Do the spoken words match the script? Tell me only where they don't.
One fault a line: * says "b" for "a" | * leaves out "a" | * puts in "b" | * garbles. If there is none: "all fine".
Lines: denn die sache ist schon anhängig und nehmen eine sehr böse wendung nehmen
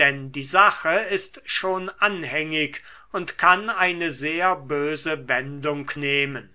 * says "kann" for "nehmen"